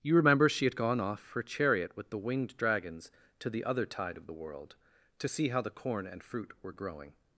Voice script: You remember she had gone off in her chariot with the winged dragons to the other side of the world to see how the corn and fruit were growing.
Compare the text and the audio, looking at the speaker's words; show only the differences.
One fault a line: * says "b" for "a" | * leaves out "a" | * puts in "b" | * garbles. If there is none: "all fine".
* leaves out "in"
* says "tide" for "side"